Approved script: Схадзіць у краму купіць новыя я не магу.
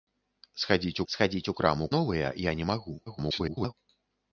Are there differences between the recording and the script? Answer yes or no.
yes